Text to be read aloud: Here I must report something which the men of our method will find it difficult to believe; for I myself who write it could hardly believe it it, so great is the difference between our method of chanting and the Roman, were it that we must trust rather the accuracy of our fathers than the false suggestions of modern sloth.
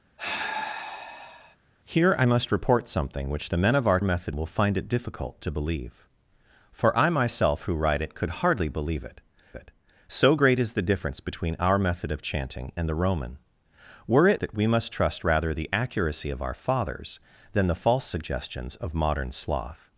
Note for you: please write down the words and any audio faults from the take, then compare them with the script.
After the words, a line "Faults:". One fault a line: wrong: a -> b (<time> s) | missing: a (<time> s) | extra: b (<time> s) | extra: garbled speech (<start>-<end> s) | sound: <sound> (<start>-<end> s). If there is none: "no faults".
Here I must report something which the men of our method will find it difficult to believe; for I myself who write it could hardly believe it it, so great is the difference between our method of chanting and the Roman, were it that we must trust rather the accuracy of our fathers than the false suggestions of modern sloth.
Faults:
sound: sigh (0.2-1.6 s)